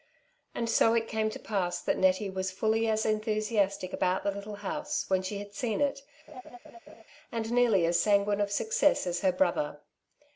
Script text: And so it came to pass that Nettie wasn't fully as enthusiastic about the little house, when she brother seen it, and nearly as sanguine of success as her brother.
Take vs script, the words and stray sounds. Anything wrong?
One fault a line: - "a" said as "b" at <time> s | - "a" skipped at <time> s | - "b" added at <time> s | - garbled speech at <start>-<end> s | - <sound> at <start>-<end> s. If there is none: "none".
- "wasn't" said as "was" at 2.3 s
- "brother" said as "had" at 5.4 s
- laugh at 6.3-7.0 s